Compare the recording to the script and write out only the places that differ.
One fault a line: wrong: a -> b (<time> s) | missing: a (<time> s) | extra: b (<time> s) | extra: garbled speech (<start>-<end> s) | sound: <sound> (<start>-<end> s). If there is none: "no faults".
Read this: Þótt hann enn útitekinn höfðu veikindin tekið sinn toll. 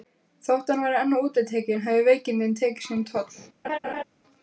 extra: væri (0.8 s)
sound: laugh (3.6-4.0 s)